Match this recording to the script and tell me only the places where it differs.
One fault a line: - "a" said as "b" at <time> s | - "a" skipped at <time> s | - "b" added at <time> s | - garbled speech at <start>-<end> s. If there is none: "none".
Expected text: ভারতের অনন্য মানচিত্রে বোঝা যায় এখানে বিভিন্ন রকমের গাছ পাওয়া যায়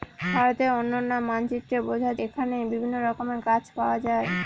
- "যায়" skipped at 2.1 s